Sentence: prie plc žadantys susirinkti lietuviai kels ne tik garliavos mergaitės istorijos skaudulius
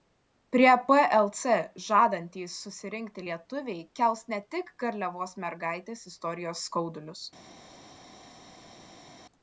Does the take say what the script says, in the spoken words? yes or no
yes